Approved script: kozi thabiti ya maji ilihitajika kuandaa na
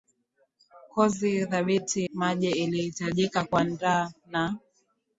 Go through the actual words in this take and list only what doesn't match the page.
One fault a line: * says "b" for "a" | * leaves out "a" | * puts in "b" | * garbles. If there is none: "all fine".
* leaves out "ya"